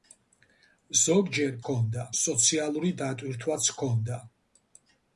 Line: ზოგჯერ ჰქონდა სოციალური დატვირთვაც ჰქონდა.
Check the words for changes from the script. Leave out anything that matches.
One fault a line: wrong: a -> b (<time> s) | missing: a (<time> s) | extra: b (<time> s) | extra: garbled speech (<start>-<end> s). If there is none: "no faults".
no faults